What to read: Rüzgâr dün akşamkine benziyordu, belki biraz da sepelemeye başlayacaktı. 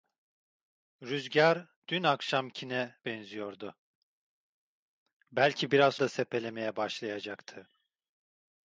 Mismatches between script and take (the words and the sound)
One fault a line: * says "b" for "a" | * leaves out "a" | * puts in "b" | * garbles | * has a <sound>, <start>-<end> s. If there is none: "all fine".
all fine